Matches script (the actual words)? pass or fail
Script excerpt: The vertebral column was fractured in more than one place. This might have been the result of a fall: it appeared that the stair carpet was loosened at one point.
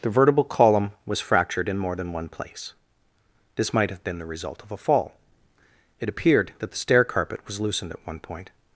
pass